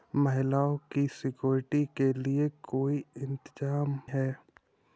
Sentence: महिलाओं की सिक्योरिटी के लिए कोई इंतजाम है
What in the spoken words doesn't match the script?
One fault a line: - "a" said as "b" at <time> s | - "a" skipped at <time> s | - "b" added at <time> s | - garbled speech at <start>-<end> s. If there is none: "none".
none